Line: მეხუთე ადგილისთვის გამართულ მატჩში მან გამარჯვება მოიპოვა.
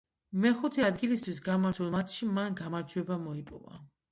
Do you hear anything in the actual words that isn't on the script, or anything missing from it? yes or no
no